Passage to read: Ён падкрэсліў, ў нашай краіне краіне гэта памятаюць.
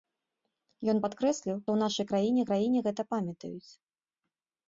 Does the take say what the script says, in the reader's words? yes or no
yes